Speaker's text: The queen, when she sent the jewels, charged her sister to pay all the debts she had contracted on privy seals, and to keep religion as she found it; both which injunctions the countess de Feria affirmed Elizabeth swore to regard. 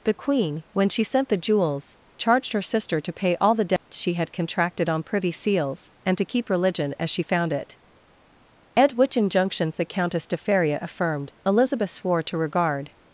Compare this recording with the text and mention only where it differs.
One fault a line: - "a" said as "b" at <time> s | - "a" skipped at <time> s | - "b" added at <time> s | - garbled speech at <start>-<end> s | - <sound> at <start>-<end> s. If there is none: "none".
- dropout at 3.8-3.9 s
- "both" said as "at" at 8.8 s